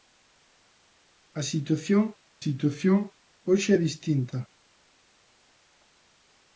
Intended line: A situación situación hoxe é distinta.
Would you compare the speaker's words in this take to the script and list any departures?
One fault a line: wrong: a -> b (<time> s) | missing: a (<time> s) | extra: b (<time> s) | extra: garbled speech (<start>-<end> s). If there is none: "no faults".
no faults